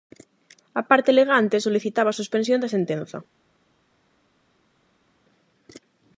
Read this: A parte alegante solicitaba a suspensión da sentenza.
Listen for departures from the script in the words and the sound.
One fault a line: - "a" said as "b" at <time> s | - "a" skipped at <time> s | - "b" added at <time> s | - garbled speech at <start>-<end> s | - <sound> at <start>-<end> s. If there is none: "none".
none